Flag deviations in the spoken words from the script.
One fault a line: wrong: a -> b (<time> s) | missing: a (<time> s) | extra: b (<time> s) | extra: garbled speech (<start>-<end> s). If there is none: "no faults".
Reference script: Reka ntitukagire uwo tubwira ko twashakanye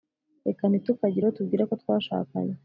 no faults